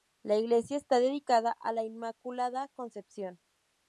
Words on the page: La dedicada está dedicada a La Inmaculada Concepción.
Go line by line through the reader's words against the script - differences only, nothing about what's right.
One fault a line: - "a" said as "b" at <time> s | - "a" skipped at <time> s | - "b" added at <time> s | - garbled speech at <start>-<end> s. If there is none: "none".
- "dedicada" said as "iglesia" at 0.3 s